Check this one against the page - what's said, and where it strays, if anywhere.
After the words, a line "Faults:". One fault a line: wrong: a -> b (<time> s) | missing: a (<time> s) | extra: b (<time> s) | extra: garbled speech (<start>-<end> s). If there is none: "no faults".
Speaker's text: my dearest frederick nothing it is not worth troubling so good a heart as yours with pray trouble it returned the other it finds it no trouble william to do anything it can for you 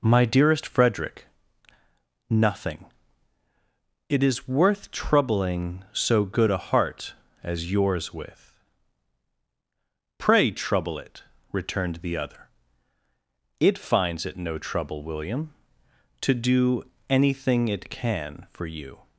my dearest frederick nothing it is worth troubling so good a heart as yours with pray trouble it returned the other it finds it no trouble william to do anything it can for you
Faults:
missing: not (4.5 s)